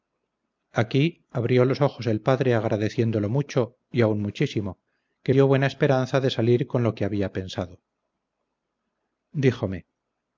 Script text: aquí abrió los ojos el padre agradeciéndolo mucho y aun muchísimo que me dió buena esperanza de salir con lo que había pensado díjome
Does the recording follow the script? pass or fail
fail